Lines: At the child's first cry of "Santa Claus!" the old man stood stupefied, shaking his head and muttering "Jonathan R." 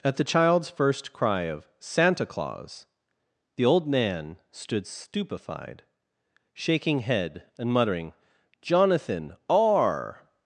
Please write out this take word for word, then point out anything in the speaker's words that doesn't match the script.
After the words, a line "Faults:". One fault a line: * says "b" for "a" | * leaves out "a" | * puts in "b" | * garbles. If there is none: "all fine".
At the child's first cry of "Santa Claus!" the old man stood stupefied, shaking head and muttering "Jonathan R."
Faults:
* leaves out "his"